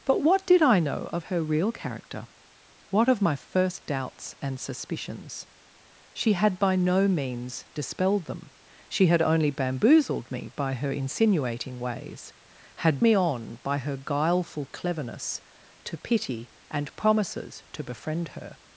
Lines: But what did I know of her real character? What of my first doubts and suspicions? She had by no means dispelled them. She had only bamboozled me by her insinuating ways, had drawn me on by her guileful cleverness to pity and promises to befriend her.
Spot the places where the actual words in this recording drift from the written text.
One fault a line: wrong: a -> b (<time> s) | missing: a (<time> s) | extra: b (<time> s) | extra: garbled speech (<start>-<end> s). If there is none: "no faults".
missing: drawn (13.0 s)